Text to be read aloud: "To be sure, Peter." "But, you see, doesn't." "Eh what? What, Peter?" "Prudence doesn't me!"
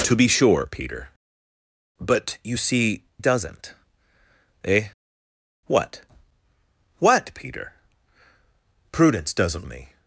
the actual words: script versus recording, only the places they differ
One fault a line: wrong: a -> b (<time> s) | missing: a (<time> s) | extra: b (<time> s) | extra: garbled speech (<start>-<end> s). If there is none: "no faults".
no faults